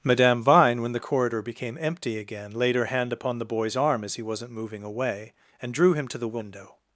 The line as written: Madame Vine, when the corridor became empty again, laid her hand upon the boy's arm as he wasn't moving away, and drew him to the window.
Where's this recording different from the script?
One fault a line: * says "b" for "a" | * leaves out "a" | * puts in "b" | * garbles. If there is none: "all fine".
all fine